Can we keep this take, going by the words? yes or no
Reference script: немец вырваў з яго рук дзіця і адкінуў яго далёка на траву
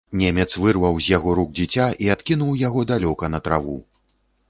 yes